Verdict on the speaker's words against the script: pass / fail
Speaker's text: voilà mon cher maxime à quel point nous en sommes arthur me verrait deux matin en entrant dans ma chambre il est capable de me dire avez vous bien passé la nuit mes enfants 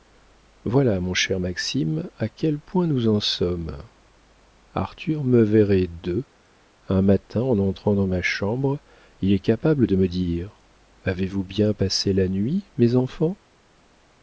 fail